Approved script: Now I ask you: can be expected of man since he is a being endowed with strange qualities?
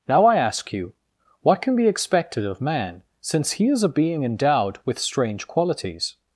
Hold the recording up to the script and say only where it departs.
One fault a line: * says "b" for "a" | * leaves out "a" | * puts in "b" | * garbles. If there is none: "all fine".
* puts in "what"